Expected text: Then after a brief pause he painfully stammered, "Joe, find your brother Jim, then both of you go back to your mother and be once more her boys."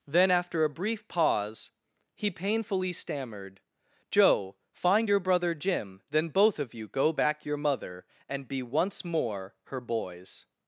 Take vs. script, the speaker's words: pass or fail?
fail